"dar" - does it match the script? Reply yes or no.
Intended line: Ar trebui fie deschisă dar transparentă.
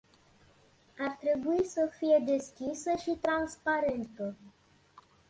no